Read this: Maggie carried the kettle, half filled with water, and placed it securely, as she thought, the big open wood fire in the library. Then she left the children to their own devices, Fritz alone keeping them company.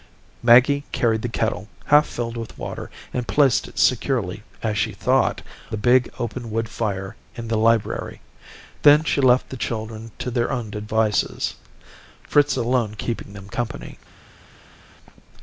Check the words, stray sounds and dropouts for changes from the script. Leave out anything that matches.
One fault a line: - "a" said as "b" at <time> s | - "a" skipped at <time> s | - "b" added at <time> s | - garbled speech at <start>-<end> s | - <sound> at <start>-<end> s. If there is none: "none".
none